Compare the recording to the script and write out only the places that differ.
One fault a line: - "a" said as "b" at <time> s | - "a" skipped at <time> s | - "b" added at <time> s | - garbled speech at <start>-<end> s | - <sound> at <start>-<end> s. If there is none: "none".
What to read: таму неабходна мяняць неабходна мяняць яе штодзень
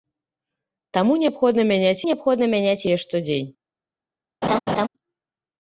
- laugh at 4.4-4.9 s